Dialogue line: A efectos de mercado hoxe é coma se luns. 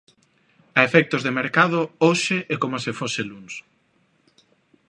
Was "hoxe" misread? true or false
false